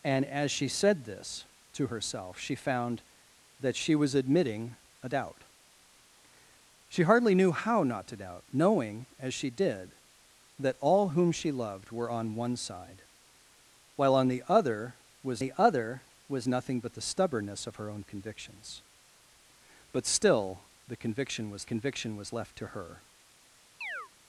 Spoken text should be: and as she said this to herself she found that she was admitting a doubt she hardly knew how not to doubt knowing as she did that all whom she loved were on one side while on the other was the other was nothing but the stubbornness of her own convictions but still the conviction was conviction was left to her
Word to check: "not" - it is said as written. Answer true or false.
true